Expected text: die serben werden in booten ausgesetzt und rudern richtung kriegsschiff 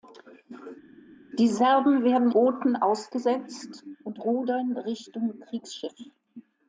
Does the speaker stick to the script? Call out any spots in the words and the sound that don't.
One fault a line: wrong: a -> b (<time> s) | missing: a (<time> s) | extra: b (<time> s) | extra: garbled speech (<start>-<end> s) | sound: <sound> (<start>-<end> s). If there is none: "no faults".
missing: in (2.3 s)